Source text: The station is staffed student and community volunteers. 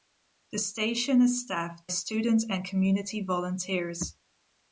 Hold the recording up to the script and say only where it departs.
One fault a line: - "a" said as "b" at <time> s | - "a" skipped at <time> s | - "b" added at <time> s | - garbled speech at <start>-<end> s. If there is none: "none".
none